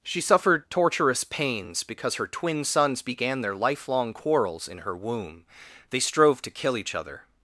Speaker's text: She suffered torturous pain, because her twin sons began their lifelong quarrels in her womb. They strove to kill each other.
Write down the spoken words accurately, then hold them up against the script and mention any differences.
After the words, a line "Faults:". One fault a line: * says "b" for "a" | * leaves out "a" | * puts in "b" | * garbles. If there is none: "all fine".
She suffered torturous pains, because her twin sons began their lifelong quarrels in her womb. They strove to kill each other.
Faults:
* says "pains" for "pain"